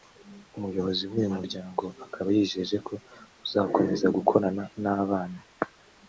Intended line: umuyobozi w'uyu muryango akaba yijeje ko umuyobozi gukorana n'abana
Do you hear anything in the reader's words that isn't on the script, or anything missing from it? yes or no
yes